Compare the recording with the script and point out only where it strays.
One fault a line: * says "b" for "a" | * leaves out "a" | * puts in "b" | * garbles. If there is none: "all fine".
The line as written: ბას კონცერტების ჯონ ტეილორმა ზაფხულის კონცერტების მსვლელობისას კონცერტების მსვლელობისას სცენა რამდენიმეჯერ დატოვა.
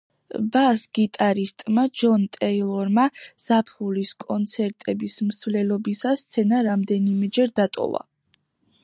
* says "გიტარისტმა" for "კონცერტების"
* leaves out "კონცერტების მსვლელობისას"